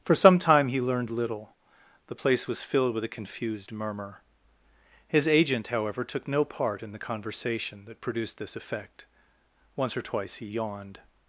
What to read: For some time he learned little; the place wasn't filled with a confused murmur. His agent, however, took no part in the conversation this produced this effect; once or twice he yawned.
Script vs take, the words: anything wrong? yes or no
yes